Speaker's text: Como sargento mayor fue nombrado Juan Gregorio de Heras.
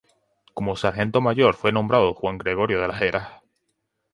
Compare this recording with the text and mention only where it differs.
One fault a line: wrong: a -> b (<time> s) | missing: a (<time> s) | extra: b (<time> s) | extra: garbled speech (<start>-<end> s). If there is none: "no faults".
extra: Las (2.9 s)